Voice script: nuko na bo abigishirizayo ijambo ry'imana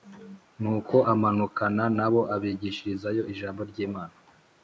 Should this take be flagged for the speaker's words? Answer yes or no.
yes